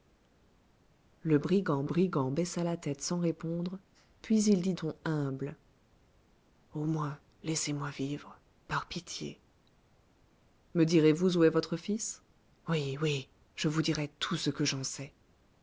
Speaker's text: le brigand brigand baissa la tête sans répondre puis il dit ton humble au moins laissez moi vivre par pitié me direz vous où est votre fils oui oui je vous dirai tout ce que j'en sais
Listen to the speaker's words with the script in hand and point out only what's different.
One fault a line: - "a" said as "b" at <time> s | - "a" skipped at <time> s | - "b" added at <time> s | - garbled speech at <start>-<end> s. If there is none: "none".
none